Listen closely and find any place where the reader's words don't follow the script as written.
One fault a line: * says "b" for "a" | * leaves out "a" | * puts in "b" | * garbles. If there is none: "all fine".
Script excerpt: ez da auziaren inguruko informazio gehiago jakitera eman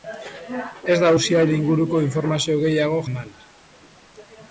* leaves out "jakitera"